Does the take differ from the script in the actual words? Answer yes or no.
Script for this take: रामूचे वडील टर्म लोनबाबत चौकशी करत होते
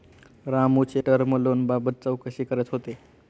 yes